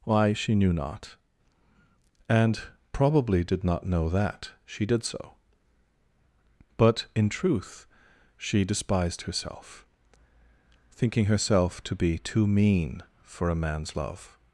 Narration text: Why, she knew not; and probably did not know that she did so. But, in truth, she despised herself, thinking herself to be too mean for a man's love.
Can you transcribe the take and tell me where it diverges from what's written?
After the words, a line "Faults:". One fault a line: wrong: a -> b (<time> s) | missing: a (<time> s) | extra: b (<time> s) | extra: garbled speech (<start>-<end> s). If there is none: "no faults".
Why, she knew not; and probably did not know that she did so. But, in truth, she despised herself, thinking herself to be too mean for a man's love.
Faults:
no faults